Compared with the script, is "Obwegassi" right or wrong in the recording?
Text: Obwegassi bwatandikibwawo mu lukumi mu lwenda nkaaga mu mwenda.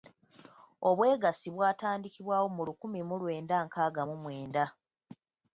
right